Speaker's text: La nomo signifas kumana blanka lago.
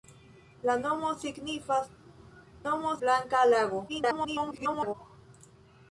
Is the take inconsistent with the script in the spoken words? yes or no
yes